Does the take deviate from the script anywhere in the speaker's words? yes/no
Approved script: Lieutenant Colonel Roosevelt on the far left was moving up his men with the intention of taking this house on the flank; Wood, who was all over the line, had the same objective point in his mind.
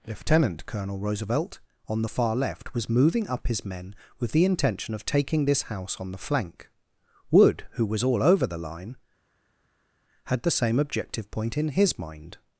no